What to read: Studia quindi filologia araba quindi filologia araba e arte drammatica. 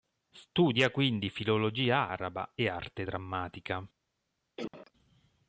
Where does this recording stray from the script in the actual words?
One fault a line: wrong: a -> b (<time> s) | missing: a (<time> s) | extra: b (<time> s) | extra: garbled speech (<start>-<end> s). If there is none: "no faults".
missing: quindi filologia araba (2.5 s)